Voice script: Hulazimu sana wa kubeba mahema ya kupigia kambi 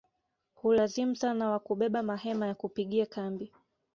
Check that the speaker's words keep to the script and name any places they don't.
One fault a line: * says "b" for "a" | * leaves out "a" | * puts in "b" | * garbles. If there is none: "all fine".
all fine